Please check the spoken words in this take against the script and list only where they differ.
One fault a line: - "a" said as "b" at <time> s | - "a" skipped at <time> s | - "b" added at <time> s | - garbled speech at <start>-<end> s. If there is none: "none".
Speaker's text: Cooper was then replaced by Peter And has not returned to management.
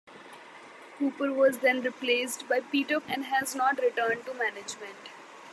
none